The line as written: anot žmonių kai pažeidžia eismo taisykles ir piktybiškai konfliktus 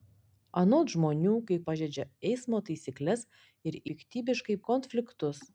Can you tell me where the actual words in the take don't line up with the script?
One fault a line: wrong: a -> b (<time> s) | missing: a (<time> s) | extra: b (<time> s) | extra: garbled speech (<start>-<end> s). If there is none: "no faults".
no faults